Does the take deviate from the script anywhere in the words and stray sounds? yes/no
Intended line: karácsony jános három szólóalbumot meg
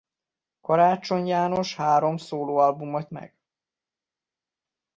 no